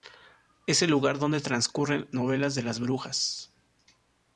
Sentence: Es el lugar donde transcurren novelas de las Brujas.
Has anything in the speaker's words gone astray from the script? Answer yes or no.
no